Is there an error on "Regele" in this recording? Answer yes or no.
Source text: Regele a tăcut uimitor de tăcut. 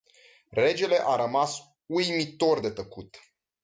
no